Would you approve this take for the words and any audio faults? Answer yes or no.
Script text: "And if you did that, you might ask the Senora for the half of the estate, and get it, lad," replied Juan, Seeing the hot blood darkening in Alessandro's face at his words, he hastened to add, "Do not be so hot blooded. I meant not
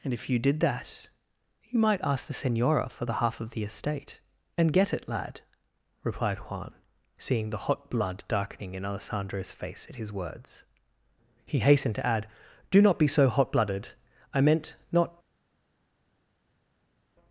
yes